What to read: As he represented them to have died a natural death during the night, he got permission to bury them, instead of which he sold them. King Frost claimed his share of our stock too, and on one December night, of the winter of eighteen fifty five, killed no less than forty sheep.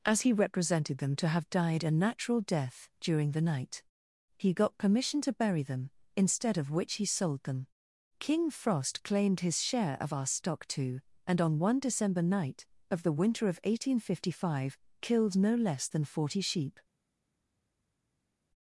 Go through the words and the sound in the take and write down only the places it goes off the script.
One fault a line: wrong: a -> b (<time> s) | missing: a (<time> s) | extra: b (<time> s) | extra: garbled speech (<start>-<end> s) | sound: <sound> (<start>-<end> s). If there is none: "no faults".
no faults